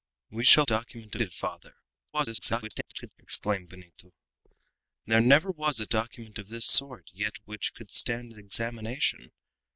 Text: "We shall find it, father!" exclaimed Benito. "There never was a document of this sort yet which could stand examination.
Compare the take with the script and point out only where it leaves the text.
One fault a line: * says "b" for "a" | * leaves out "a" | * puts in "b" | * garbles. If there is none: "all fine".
* says "document" for "find"
* garbles